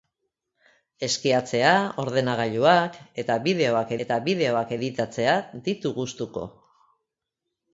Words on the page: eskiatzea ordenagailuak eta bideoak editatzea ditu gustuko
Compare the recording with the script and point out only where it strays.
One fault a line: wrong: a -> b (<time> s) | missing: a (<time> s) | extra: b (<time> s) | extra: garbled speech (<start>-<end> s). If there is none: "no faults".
extra: eta bideoak (4.1 s)